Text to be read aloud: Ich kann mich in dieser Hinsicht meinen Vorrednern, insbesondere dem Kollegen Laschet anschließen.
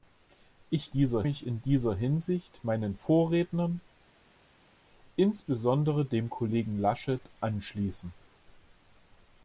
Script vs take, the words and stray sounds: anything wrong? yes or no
yes